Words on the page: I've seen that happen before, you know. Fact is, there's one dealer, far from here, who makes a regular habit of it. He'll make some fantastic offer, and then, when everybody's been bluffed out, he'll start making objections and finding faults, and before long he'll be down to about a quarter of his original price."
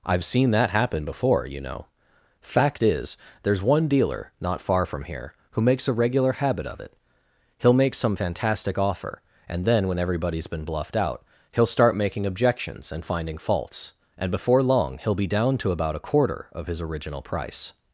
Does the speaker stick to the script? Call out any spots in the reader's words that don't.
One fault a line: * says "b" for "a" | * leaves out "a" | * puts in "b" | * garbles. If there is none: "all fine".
* puts in "not"